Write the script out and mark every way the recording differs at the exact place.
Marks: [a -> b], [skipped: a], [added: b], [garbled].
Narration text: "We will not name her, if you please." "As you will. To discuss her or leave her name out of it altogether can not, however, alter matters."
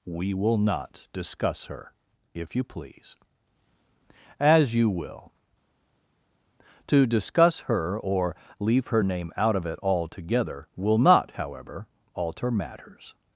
"We will not [name -> discuss] her, if you please." "As you will. To discuss her or leave her name out of it altogether [can -> will] not, however, alter matters."